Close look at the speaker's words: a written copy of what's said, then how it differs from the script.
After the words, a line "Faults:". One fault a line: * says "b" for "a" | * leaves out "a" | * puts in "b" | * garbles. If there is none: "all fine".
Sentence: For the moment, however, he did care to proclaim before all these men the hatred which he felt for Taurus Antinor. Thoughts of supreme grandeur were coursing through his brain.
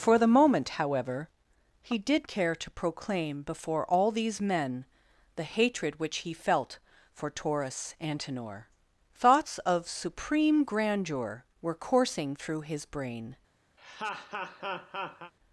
For the moment, however, he did care to proclaim before all these men the hatred which he felt for Taurus Antinor. Thoughts of supreme grandeur were coursing through his brain.
Faults:
all fine